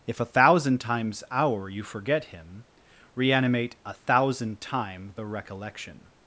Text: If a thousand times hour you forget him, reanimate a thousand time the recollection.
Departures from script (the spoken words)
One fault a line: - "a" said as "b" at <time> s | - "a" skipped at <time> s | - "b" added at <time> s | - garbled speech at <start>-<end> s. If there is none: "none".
none